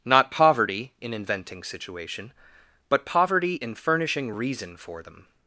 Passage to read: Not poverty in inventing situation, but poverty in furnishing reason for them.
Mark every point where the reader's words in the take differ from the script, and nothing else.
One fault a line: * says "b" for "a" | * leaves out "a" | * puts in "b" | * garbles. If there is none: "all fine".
all fine